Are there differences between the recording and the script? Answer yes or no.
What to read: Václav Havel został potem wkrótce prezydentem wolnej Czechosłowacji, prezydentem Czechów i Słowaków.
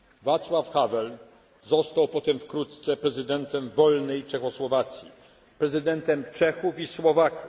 no